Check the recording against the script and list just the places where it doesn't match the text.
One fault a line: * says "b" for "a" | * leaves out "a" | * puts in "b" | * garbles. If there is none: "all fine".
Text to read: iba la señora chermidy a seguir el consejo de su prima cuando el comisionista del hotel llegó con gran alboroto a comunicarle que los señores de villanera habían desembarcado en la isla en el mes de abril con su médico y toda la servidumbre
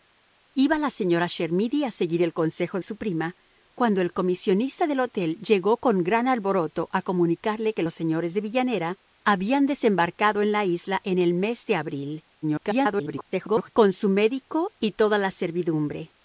* leaves out "de"
* garbles